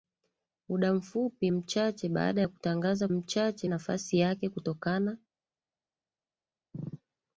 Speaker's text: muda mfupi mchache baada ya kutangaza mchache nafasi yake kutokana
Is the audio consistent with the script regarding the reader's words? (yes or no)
yes